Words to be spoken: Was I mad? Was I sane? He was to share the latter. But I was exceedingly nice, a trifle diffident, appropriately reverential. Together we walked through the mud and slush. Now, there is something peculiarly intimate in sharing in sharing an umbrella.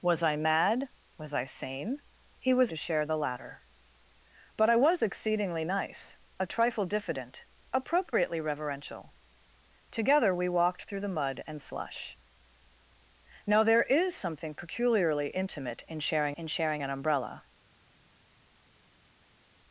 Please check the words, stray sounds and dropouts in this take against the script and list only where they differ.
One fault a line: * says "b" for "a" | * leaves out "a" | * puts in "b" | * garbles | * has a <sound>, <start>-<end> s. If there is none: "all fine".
all fine